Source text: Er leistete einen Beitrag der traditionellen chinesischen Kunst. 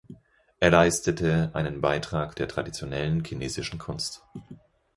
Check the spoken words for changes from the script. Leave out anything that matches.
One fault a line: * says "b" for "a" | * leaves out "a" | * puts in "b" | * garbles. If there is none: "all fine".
all fine